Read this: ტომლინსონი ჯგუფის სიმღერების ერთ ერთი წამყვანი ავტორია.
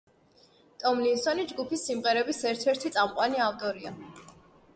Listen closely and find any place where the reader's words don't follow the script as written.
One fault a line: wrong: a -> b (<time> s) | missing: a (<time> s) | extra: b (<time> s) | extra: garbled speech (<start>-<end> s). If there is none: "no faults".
no faults